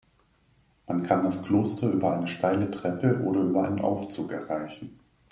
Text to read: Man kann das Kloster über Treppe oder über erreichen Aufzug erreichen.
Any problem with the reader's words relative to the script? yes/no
yes